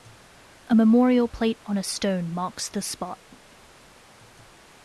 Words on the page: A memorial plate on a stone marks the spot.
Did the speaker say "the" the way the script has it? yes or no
yes